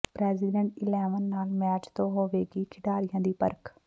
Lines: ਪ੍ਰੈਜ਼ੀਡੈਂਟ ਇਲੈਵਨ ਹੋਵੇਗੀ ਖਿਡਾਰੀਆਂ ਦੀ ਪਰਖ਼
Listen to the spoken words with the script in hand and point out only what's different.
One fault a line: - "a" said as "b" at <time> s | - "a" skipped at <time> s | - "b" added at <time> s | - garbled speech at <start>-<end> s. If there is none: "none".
- "ਨਾਲ ਮੈਚ ਤੋਂ" added at 1.2 s